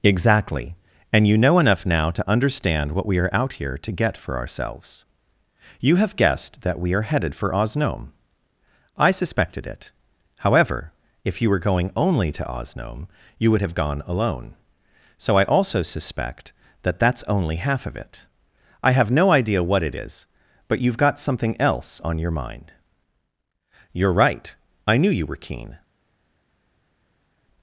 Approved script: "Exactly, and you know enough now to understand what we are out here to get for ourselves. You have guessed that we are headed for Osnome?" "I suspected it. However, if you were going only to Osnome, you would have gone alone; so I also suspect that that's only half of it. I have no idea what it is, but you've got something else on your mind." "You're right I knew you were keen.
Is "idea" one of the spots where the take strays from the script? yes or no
no